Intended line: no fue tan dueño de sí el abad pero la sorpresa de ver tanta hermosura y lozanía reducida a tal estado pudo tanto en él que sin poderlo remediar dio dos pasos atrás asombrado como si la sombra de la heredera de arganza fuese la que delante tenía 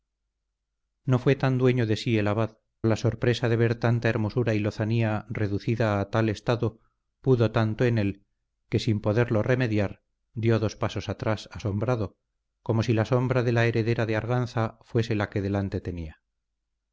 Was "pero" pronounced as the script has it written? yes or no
no